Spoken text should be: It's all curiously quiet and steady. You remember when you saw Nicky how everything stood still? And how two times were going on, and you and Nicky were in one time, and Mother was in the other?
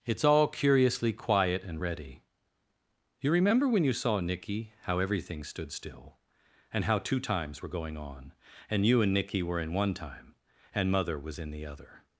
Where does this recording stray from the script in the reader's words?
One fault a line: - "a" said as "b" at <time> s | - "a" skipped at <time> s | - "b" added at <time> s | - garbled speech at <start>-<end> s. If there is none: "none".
- "steady" said as "ready" at 1.8 s